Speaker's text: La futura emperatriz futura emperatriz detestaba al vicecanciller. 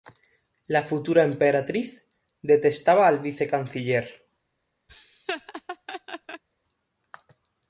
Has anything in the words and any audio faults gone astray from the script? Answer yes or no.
yes